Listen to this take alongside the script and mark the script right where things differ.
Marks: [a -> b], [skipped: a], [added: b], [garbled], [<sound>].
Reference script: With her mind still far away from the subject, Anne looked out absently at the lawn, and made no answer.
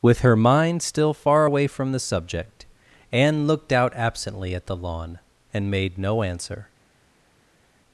With her mind still far away from the subject, Anne looked out absently at the lawn, and made no answer.